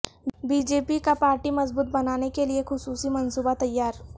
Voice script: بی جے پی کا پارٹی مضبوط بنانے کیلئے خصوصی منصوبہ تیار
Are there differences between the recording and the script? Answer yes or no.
no